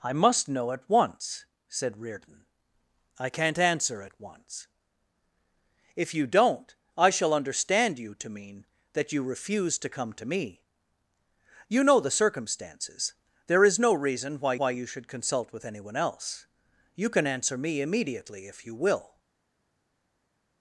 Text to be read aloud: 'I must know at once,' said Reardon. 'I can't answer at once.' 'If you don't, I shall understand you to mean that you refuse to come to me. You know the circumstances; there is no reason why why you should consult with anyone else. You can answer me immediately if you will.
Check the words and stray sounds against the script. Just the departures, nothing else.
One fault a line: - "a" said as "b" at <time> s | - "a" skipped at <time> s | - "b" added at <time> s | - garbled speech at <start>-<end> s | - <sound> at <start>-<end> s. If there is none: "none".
none